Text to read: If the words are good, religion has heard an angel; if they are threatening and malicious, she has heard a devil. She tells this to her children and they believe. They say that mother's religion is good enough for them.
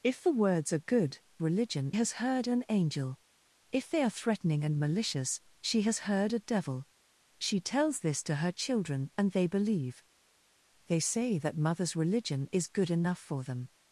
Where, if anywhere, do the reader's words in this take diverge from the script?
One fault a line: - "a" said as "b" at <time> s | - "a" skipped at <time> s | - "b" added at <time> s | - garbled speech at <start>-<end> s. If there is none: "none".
none